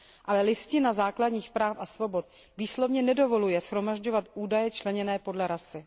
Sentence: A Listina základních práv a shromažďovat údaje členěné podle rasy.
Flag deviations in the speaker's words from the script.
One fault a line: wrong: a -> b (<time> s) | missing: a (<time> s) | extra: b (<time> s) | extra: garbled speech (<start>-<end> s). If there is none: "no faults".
wrong: A -> Ale (0.2 s)
extra: svobod výslovně nedovoluje (1.9 s)